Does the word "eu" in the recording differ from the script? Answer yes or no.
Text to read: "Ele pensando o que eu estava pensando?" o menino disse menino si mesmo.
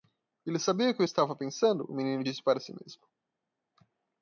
no